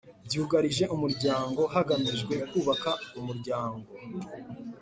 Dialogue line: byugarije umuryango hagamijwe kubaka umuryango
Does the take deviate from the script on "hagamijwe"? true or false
false